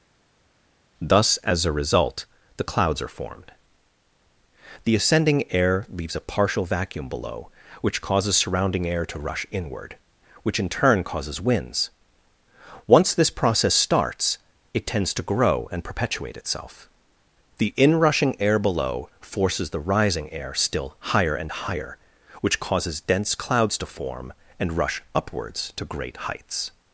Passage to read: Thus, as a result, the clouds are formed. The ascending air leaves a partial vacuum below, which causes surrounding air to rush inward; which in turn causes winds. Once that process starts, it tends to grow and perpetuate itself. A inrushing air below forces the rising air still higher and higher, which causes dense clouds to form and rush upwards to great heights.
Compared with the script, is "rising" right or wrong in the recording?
right